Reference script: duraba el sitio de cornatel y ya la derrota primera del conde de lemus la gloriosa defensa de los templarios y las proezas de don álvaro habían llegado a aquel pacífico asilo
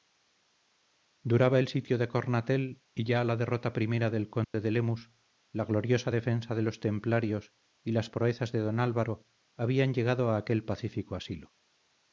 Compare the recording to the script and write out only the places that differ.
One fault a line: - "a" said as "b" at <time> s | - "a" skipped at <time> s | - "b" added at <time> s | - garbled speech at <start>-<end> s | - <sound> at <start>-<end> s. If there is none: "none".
- dropout at 4.4-4.5 s